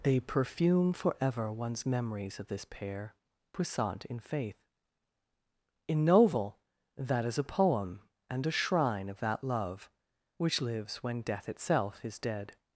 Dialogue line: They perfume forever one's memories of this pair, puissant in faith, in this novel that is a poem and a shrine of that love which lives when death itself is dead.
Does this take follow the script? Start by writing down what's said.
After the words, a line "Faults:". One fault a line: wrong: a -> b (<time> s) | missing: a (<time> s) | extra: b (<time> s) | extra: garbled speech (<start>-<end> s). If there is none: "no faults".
They perfume forever one's memories of this pair, puissant in faith, in novel that is a poem and a shrine of that love which lives when death itself is dead.
Faults:
missing: this (6.0 s)